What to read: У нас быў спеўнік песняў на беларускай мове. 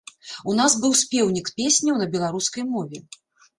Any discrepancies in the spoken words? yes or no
no